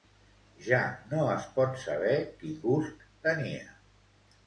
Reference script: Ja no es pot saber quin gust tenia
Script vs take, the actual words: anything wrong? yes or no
no